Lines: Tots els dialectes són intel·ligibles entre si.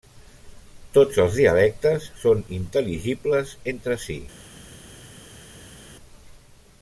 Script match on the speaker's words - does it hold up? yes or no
yes